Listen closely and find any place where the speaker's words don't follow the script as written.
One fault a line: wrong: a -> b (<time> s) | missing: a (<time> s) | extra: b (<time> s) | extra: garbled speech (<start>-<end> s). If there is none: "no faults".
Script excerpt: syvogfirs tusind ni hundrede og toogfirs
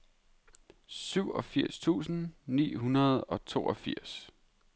no faults